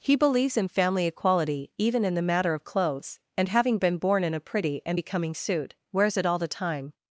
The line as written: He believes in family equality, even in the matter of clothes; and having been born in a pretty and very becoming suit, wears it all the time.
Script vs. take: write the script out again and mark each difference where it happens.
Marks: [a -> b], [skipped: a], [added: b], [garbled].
He believes in family equality, even in the matter of clothes; and having been born in a pretty and [skipped: very] becoming suit, wears it all the time.